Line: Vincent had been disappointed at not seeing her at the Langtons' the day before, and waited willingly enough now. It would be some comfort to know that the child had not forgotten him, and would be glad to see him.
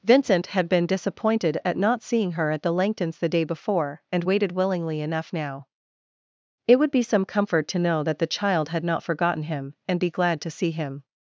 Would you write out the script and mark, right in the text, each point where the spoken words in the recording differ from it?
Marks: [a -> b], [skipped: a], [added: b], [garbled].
Vincent had been disappointed at not seeing her at the Langtons' the day before, and waited willingly enough now. It would be some comfort to know that the child had not forgotten him, and [skipped: would] be glad to see him.